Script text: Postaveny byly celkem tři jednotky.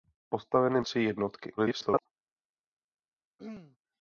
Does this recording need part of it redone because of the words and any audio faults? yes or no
yes